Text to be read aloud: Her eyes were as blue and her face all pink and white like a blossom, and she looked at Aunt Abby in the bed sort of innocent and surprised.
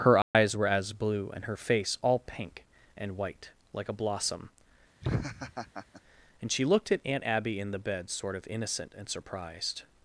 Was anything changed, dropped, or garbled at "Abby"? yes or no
no